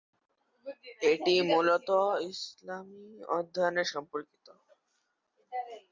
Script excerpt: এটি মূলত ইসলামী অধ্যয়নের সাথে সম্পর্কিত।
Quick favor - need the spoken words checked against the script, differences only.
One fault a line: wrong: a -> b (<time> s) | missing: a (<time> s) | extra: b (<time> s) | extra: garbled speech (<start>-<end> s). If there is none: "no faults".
missing: সাথে (3.9 s)